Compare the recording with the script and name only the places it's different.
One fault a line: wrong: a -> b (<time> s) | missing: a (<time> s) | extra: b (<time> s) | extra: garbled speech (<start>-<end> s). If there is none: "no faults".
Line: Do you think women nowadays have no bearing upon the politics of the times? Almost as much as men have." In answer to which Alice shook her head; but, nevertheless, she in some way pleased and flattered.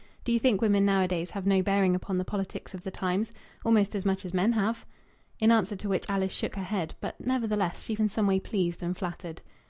no faults